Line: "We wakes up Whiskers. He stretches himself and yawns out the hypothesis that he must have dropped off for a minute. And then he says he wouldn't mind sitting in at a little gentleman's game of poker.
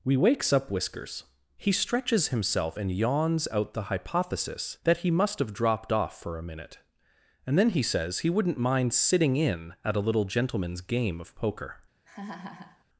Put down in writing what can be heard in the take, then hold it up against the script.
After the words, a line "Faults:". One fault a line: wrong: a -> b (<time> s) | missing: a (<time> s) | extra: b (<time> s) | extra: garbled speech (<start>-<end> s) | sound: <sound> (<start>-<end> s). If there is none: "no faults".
"We wakes up Whiskers. He stretches himself and yawns out the hypothesis that he must have dropped off for a minute. And then he says he wouldn't mind sitting in at a little gentleman's game of poker.
Faults:
sound: laugh (12.0-12.8 s)